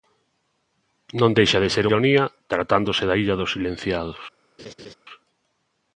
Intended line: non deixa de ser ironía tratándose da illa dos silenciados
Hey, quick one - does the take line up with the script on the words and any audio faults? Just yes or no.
no